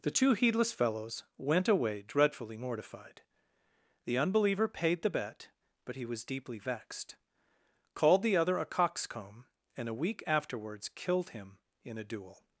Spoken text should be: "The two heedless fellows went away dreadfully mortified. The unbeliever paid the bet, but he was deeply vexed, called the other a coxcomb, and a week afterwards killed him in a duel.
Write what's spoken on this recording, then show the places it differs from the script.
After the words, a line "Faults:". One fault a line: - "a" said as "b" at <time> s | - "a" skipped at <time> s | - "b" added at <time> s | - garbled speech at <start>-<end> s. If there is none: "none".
"The two heedless fellows went away dreadfully mortified. The unbeliever paid the bet, but he was deeply vexed, called the other a coxcomb, and a week afterwards killed him in a duel.
Faults:
none